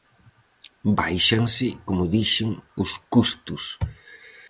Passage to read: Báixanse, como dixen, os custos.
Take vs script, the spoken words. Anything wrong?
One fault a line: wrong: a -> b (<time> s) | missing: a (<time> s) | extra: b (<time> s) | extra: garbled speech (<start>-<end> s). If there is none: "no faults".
no faults